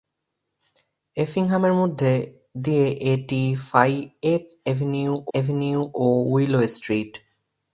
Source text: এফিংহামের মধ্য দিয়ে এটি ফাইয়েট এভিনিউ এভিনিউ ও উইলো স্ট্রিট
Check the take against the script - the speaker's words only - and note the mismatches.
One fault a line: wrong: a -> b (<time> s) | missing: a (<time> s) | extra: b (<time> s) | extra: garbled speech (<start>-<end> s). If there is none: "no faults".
no faults